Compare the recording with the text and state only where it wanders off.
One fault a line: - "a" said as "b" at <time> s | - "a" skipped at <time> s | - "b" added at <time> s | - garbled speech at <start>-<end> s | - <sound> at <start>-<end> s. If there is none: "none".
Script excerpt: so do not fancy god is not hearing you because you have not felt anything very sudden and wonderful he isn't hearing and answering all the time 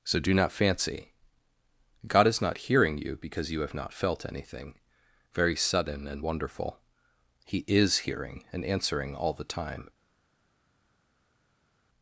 - "isn't" said as "is" at 7.7 s